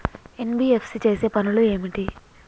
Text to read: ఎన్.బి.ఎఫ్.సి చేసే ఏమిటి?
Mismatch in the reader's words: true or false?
true